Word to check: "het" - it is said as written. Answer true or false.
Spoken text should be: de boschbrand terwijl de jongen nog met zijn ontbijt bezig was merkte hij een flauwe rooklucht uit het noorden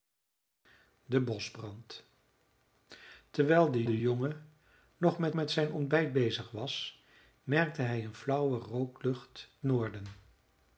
false